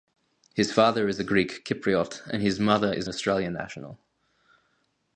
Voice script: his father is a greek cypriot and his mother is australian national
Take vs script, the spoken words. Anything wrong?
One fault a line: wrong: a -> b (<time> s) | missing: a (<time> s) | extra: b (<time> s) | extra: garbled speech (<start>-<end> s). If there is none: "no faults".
no faults